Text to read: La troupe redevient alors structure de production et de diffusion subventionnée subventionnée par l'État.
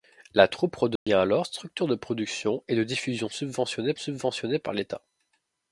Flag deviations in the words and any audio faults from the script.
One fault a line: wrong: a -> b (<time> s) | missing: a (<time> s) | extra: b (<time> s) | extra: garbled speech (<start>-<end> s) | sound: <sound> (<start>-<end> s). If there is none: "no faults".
sound: dropout (1.0-1.1 s)